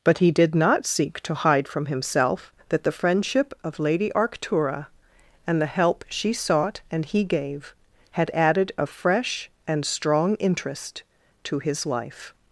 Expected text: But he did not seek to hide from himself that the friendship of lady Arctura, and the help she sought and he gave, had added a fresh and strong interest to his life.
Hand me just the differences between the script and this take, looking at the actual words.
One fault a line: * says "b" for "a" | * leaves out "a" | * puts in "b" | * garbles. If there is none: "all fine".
all fine